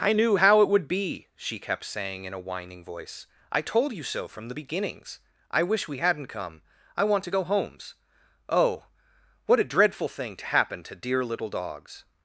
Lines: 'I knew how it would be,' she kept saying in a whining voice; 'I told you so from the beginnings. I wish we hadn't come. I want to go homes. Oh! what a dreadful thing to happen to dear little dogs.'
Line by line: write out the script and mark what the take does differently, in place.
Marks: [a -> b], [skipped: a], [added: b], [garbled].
'I knew how it would be,' she kept saying in a whining voice; 'I told you so from the beginnings. I wish we hadn't come. I want to go homes. Oh! what a dreadful thing to happen to dear little dogs.'